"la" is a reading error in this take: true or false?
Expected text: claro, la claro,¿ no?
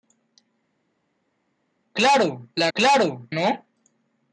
false